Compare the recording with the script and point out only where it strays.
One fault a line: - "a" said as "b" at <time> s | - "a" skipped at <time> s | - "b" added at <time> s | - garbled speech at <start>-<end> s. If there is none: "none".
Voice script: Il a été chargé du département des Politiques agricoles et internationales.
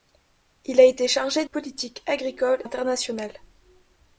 - "du département des" skipped at 1.4 s
- "et" skipped at 2.6 s